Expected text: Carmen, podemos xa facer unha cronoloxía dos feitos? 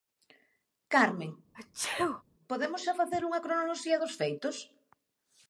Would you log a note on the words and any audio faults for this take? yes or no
yes